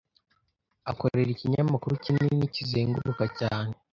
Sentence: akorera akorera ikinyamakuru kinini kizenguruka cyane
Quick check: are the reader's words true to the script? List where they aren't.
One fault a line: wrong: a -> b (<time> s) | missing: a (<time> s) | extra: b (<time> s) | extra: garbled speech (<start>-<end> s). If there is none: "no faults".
missing: akorera (1.3 s)